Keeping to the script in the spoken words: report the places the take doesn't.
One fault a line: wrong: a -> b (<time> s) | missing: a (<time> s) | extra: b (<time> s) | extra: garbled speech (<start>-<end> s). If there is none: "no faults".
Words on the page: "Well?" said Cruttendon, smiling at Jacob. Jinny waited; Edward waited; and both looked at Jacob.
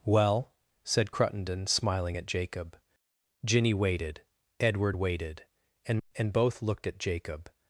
extra: and (6.2 s)